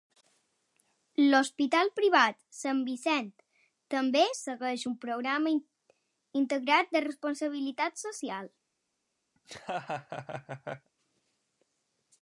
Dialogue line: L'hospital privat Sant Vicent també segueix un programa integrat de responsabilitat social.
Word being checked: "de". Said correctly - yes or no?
yes